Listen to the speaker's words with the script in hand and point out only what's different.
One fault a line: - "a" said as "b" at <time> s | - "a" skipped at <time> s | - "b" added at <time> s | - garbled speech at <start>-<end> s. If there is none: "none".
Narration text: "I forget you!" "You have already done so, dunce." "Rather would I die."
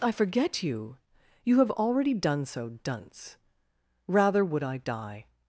none